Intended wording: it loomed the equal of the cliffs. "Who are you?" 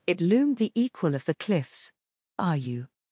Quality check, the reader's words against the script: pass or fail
fail